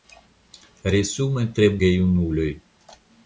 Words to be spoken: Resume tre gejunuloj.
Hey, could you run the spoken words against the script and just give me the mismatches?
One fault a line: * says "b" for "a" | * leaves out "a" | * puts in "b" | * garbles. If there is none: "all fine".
all fine